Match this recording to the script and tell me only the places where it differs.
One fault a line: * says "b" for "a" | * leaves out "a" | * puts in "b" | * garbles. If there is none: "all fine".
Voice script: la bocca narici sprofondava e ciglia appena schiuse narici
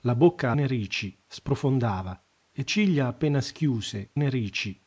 all fine